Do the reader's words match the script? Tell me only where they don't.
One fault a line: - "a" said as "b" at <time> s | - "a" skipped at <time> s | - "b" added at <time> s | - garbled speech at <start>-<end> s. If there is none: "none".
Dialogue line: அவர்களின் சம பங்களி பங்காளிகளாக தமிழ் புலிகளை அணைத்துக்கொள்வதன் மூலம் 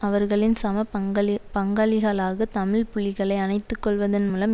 none